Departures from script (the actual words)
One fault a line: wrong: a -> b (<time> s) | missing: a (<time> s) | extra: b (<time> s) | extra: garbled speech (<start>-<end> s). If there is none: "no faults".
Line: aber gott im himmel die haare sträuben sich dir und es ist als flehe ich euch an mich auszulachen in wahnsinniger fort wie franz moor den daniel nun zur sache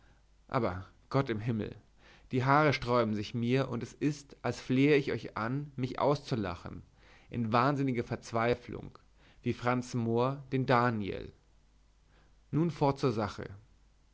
wrong: dir -> mir (3.4 s)
wrong: fort -> verzweiflung (8.0 s)
extra: fort (12.7 s)